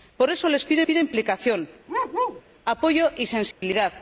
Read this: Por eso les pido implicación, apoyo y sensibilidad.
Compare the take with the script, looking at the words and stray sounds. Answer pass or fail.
fail